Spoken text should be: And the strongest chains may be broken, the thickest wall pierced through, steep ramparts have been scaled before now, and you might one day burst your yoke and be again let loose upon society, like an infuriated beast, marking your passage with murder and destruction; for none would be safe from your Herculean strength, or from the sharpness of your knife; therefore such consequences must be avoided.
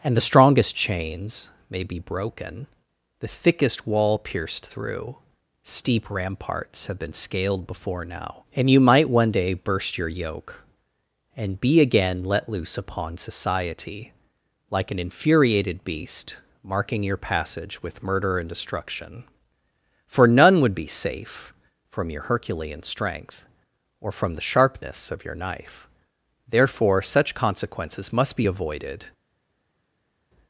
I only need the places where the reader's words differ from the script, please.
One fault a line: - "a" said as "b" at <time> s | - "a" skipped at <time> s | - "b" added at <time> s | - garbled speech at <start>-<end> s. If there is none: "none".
none